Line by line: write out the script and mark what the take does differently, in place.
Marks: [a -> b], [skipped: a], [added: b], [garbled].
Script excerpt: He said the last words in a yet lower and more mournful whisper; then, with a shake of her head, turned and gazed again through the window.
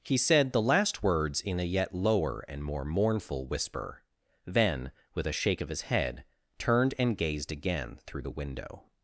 He said the last words in a yet lower and more mournful whisper; then, with a shake of [her -> his] head, turned and gazed again through the window.